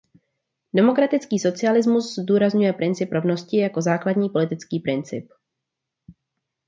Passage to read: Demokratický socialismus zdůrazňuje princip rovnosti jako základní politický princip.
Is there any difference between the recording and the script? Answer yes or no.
no